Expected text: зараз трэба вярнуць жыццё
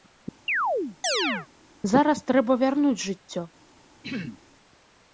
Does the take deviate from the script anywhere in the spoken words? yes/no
no